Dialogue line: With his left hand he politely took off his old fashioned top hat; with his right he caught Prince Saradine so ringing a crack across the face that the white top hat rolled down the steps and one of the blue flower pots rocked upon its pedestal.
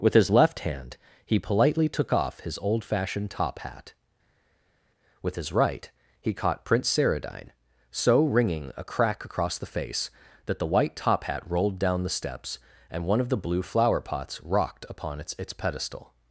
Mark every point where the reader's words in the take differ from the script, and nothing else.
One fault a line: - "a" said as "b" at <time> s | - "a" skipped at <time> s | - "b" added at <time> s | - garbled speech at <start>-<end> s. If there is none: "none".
- "its" added at 15.4 s